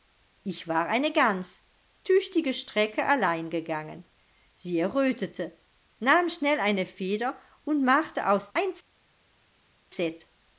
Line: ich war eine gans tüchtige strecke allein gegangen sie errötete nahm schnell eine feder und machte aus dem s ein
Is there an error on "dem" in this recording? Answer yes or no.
yes